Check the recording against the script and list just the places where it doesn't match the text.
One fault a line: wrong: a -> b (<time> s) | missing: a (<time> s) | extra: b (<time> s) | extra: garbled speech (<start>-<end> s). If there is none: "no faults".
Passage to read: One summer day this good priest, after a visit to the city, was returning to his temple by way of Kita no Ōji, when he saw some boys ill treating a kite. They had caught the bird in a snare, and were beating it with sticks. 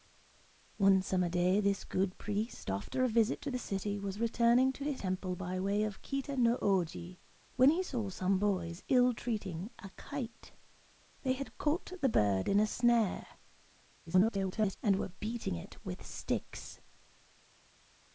extra: garbled speech (14.1-14.8 s)